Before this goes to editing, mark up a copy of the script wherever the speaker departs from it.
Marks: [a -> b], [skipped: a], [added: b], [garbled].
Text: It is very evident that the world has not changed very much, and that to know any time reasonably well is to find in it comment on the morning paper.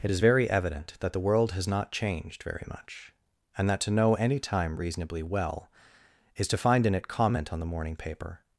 It is very evident that the world has not changed very much, and that to know any time reasonably well is to find in it comment on the morning paper.